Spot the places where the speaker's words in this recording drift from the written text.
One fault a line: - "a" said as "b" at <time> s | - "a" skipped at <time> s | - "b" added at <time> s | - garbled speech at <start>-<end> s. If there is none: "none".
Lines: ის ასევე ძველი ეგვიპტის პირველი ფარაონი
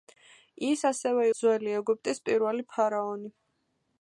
none